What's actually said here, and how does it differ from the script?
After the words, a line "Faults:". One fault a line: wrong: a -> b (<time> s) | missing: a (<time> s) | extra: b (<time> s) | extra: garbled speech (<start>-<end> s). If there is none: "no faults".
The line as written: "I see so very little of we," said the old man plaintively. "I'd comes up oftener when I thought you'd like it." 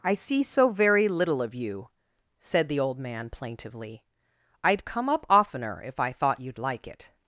"I see so very little of you," said the old man plaintively. "I'd come up oftener if I thought you'd like it."
Faults:
wrong: we -> you (1.5 s)
wrong: comes -> come (4.8 s)
wrong: when -> if (5.8 s)